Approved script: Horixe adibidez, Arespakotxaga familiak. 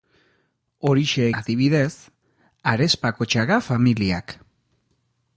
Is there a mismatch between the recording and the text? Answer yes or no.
no